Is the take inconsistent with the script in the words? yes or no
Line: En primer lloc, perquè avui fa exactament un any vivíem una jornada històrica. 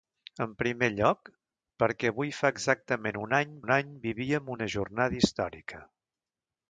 yes